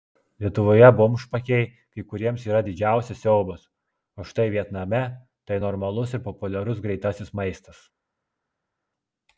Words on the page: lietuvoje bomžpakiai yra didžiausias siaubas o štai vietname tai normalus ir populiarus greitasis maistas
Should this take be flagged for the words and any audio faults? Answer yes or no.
yes